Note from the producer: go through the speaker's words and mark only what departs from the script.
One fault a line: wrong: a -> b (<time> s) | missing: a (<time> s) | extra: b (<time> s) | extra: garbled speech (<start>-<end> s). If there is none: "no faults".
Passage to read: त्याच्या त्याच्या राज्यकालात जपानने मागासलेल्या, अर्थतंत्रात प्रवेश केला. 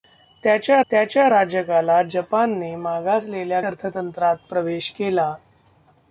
no faults